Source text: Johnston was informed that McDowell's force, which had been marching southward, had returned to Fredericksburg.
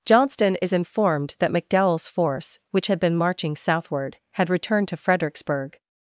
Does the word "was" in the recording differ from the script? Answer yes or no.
yes